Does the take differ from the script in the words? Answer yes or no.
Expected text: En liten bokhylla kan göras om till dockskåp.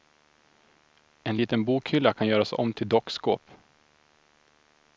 no